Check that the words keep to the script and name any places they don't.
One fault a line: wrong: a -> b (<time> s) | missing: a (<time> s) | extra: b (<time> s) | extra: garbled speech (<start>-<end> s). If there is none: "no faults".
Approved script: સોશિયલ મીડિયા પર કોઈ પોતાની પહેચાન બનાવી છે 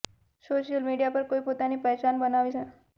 no faults